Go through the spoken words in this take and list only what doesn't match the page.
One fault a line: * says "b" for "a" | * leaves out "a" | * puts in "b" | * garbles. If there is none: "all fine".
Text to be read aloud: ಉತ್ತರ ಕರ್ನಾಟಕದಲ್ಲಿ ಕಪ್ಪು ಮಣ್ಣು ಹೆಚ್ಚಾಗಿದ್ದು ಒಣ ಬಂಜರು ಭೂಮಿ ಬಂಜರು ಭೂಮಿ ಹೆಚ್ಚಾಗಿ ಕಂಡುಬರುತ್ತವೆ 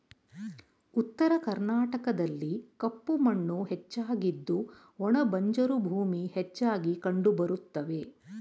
* leaves out "ಬಂಜರು ಭೂಮಿ"